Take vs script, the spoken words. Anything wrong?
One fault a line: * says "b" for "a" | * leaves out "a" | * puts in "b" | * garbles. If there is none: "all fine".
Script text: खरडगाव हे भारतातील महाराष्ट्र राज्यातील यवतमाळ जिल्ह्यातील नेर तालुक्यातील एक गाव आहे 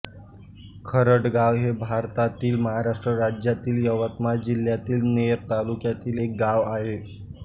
all fine